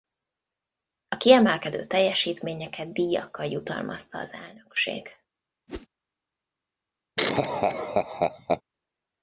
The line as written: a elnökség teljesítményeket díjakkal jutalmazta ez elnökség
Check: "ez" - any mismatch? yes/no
yes